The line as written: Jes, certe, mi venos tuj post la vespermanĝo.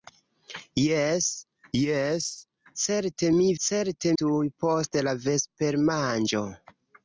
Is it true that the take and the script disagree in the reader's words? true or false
true